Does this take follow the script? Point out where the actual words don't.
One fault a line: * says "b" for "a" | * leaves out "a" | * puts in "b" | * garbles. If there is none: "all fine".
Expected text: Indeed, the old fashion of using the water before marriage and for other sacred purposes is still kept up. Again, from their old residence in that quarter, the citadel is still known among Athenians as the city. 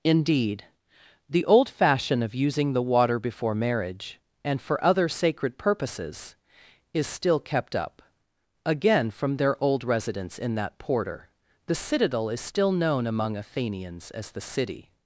* says "porter" for "quarter"